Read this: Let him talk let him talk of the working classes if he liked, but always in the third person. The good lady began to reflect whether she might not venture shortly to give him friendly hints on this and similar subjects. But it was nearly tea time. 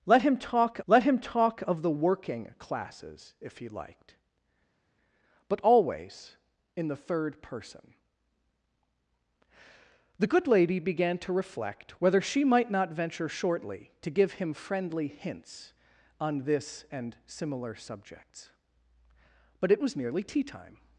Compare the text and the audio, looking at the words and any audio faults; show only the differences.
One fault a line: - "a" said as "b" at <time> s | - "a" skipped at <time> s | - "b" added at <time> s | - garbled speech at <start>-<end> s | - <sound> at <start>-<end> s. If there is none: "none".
none